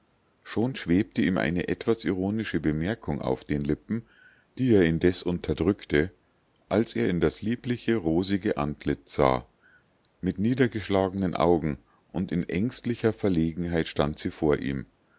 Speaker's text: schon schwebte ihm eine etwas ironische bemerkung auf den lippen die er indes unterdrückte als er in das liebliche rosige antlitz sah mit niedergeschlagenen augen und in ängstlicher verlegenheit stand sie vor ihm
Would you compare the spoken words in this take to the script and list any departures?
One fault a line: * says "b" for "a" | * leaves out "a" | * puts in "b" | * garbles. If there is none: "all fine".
all fine